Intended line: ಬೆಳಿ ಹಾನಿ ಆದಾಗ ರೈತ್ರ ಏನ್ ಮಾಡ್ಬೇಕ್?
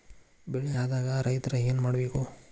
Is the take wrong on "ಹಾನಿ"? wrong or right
wrong